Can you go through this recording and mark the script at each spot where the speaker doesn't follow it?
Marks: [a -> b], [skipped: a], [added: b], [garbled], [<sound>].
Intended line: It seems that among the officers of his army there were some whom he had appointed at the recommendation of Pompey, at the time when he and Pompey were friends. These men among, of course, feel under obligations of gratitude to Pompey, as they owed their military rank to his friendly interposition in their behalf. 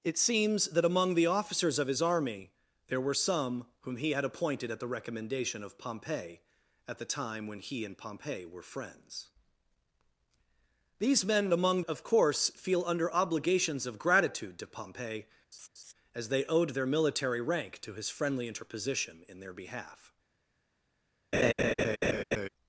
It seems that among the officers of his army there were some whom he had appointed at the recommendation of Pompey, at the time when he and Pompey were friends. These men among, of course, feel under obligations of gratitude to Pompey, [laugh] as they owed their military rank to his friendly interposition in their behalf. [laugh]